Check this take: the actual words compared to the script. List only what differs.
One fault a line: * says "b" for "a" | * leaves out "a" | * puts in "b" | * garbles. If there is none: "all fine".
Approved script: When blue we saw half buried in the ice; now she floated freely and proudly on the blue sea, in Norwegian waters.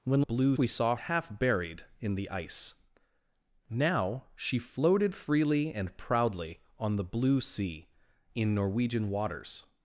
all fine